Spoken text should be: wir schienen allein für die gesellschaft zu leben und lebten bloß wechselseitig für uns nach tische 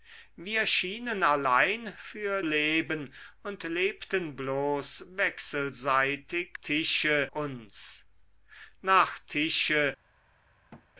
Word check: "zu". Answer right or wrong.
wrong